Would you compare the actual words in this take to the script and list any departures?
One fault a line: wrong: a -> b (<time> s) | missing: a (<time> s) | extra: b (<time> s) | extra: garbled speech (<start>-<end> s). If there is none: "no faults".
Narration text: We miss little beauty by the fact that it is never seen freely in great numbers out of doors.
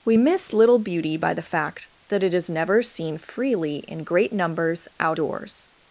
missing: of (5.2 s)